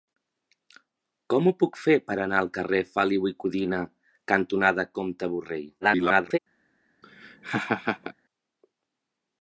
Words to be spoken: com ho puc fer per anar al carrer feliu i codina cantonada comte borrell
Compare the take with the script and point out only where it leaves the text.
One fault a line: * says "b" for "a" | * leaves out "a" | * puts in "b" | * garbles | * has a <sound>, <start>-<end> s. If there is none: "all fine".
* garbles
* has a laugh, 7.0-8.1 s